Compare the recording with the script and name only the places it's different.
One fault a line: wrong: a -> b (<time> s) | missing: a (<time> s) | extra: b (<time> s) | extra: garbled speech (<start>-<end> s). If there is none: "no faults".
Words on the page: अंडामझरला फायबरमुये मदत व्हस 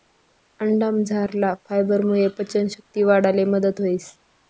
extra: पचन शक्ती वाढाले (2.4 s)